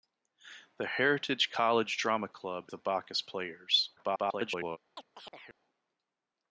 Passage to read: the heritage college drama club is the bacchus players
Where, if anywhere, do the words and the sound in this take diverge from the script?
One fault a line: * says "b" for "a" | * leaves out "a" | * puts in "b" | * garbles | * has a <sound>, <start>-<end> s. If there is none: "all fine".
* leaves out "is"
* garbles
* has a chirp, 5.0-5.6 s